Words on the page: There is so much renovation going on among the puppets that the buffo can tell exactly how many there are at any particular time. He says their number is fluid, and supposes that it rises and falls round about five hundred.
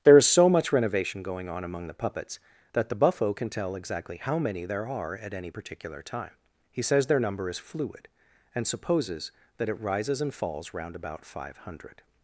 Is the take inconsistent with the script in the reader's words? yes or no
no